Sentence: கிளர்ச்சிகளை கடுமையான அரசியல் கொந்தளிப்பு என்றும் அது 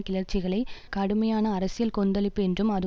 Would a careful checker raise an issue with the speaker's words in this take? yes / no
no